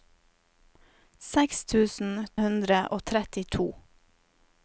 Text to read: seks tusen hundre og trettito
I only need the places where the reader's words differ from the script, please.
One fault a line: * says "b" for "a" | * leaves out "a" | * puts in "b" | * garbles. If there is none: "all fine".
all fine